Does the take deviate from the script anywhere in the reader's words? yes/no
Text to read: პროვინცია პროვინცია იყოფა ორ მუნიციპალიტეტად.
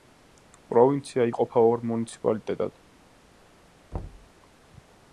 yes